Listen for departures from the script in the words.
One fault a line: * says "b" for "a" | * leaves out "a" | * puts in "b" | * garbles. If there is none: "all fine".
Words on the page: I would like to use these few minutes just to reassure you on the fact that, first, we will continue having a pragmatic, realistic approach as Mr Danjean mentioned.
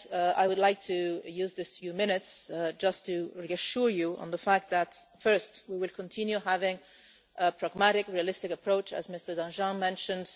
all fine